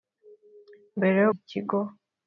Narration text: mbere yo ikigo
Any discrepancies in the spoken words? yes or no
no